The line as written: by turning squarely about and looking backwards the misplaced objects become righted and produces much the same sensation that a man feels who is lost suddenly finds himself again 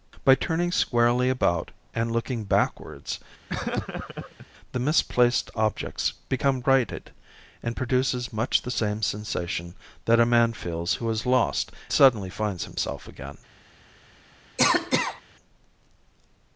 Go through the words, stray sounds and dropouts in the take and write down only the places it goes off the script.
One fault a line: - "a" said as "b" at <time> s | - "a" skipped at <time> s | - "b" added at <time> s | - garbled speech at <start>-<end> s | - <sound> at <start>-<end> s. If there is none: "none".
- laugh at 3.5-4.5 s
- cough at 14.6-15.2 s